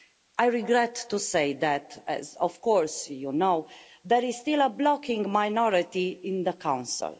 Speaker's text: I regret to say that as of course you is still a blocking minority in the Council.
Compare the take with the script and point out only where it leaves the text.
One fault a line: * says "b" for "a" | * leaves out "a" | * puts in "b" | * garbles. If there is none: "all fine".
* puts in "know there"